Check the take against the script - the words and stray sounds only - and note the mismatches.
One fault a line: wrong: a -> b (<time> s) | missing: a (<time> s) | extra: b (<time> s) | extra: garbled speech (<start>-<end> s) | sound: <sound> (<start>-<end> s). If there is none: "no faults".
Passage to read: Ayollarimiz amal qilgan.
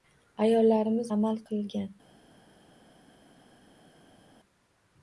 no faults